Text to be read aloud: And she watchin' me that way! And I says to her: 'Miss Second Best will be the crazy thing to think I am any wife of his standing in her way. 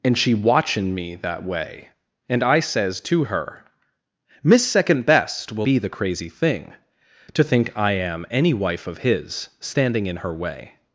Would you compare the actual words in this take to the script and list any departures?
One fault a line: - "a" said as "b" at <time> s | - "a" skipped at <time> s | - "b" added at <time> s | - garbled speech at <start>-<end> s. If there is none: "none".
none